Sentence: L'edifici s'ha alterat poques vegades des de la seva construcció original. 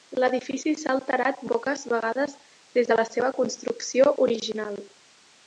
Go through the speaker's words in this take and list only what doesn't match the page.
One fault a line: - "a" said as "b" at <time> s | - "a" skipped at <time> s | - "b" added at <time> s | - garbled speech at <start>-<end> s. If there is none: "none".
none